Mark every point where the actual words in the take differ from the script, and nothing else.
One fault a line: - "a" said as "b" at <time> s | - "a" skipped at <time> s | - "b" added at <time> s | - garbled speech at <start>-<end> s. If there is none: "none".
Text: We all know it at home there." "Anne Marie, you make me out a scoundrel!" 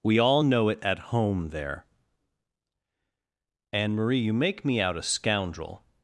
none